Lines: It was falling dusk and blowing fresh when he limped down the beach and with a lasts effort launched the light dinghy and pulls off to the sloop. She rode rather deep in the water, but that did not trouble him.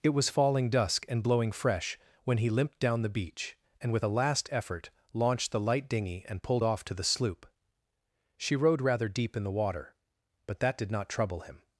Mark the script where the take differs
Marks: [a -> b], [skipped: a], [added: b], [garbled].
It was falling dusk and blowing fresh when he limped down the beach and with a [lasts -> last] effort launched the light dinghy and [pulls -> pulled] off to the sloop. She rode rather deep in the water, but that did not trouble him.